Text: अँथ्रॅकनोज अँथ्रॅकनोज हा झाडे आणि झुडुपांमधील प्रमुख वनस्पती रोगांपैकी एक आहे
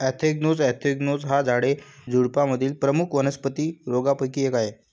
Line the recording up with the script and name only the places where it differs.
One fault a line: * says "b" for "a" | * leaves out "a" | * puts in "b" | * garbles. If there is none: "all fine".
* leaves out "आणि"